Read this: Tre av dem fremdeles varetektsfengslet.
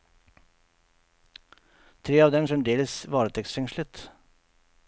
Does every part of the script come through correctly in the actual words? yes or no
yes